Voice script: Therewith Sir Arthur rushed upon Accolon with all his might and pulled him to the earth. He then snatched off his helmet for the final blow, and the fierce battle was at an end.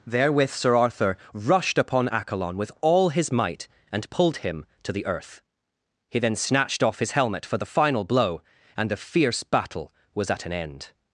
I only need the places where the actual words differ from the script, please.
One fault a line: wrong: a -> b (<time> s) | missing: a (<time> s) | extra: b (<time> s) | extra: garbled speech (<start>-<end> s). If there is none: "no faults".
no faults